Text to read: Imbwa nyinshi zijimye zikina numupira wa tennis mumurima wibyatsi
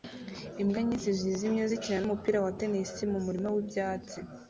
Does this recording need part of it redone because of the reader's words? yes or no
no